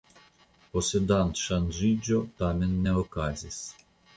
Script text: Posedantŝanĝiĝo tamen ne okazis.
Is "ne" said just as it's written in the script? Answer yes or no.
yes